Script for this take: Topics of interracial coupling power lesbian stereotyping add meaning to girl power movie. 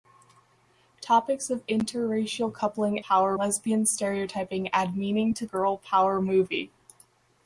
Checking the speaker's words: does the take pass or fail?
pass